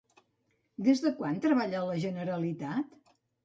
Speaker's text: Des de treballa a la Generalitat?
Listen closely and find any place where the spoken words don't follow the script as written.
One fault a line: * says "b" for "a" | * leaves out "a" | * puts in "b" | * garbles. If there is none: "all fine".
* puts in "quan"